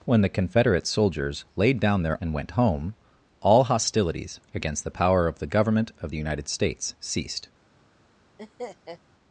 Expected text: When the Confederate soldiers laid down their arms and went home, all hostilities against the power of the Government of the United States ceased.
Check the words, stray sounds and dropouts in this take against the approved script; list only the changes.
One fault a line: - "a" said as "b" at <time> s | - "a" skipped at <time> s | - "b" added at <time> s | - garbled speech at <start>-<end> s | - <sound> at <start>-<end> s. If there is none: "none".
- "arms" skipped at 2.2 s
- laugh at 8.4-9.0 s